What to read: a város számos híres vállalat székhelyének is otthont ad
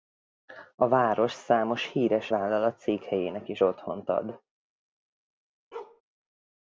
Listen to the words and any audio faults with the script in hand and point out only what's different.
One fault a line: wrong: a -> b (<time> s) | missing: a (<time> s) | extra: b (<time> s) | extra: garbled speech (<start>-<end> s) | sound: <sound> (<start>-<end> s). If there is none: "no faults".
sound: bark (5.7-6.0 s)